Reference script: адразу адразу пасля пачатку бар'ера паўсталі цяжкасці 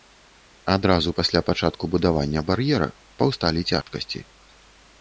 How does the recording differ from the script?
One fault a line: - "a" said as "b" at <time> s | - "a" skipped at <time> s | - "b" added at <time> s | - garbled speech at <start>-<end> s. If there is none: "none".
- "адразу" skipped at 1.1 s
- "будавання" added at 2.0 s